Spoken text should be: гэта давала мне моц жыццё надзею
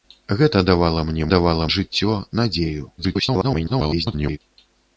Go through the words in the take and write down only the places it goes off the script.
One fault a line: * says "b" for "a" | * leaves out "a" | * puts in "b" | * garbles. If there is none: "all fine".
* says "давала" for "моц"
* garbles